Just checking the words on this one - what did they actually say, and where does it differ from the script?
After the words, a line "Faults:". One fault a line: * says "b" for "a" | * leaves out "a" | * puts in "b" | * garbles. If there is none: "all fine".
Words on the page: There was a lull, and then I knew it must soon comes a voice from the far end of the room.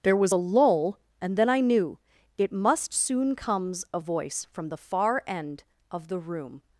There was a lull, and then I knew it must soon comes a voice from the far end of the room.
Faults:
all fine